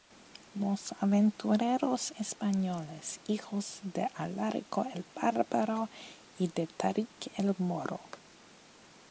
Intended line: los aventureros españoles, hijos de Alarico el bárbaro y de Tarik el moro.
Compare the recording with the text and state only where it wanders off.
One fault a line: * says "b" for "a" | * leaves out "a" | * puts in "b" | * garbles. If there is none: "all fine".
all fine